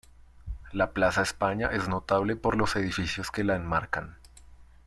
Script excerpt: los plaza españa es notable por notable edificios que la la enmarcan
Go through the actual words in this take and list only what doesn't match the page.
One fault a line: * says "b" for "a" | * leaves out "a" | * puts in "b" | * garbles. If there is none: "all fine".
* says "la" for "los"
* says "los" for "notable"
* leaves out "la"